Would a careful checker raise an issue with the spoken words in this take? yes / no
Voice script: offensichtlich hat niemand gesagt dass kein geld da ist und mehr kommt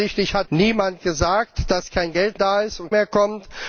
no